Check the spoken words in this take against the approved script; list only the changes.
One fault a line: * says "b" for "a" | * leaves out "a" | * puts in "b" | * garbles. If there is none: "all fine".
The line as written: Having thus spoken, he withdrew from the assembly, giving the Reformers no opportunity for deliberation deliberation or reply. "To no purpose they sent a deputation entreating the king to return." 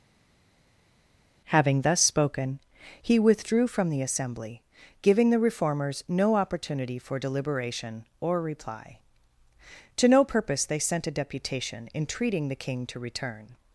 * leaves out "deliberation"